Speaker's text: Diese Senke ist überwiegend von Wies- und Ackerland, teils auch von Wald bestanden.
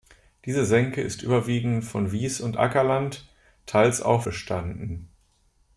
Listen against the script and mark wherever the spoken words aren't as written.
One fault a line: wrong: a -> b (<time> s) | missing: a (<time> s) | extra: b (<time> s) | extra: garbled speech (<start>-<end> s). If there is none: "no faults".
missing: von Wald (4.2 s)